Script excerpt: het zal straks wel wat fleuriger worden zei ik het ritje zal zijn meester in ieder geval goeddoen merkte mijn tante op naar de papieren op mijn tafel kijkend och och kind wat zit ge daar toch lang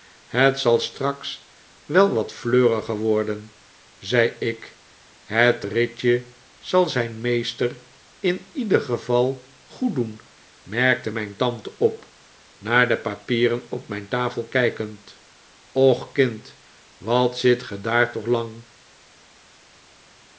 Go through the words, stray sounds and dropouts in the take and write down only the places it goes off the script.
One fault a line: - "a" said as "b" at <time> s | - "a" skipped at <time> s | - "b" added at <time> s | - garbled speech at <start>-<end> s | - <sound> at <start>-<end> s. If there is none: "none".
- "och" skipped at 16.1 s